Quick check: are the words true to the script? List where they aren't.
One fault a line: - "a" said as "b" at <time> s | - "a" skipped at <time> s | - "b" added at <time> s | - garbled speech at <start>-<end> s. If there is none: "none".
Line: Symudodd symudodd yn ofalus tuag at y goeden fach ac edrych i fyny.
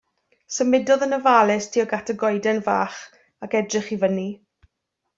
- "symudodd" skipped at 1.1 s